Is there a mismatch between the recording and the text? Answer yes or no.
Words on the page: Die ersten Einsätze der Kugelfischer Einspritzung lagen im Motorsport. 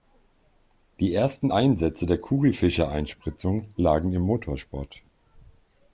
no